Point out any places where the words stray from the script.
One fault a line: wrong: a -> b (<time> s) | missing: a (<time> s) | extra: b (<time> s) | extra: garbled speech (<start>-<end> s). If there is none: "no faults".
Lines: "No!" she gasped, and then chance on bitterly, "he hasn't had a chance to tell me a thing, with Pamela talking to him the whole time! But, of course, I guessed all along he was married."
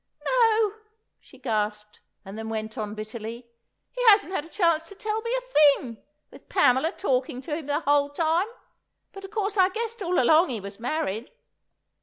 wrong: chance -> went (2.5 s)